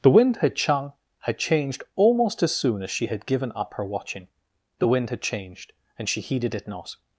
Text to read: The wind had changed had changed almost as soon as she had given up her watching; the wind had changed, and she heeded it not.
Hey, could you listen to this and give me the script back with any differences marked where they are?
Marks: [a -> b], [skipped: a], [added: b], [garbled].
The wind had [changed -> chang] had changed almost as soon as she had given up her watching; the wind had changed, and she heeded it not.